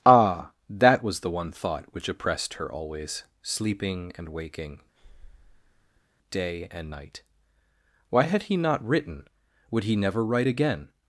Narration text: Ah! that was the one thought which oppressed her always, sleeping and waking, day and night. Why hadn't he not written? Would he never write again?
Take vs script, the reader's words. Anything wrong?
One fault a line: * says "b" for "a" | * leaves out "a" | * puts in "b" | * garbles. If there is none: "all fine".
* says "had" for "hadn't"